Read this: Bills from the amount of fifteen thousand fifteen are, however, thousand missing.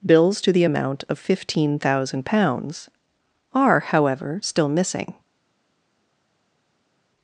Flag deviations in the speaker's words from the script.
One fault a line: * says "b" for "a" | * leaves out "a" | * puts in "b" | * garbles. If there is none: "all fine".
* says "to" for "from"
* says "pounds" for "fifteen"
* says "still" for "thousand"